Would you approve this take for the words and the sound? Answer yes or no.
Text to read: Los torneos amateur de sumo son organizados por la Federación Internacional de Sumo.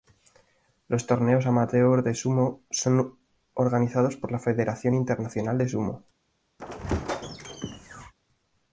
no